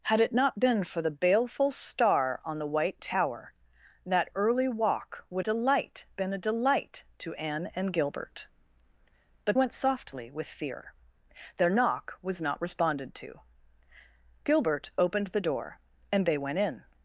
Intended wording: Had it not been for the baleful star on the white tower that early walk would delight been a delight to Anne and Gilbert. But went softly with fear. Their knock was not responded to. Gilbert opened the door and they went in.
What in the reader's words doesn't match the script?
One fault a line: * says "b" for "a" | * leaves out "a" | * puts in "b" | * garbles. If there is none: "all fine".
all fine